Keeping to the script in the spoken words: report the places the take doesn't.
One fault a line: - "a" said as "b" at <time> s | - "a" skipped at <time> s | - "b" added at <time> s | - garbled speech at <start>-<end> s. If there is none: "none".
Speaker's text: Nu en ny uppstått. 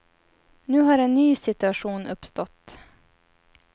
- "har" added at 0.8 s
- "situation" added at 1.4 s